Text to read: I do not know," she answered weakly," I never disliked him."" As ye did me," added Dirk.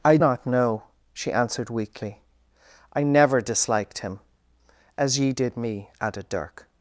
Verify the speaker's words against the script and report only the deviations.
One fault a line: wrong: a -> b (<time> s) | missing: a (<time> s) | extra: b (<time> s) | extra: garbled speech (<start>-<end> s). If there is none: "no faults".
missing: do (0.2 s)